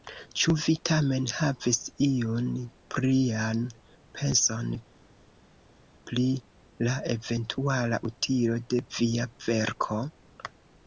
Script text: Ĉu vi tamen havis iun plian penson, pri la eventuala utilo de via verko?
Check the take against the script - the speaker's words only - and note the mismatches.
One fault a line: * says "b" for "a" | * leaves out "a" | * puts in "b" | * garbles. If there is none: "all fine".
all fine